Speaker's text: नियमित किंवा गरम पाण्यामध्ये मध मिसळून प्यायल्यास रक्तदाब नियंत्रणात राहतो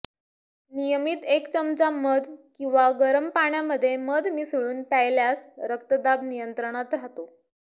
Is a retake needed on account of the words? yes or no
yes